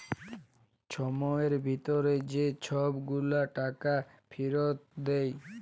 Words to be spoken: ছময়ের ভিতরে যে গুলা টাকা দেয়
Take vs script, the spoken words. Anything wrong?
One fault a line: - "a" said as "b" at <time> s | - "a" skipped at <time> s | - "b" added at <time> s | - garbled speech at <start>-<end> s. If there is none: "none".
- "ছব" added at 2.6 s
- "ফিরত" added at 4.3 s